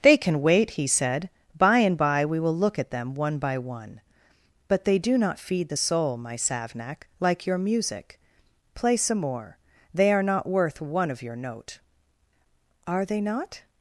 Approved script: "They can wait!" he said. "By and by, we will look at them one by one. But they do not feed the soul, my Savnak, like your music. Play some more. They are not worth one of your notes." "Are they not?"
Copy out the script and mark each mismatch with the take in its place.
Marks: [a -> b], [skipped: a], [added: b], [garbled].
"They can wait!" he said. "By and by, we will look at them one by one. But they do not feed the soul, my Savnak, like your music. Play some more. They are not worth one of your [notes." -> note] "Are they not?"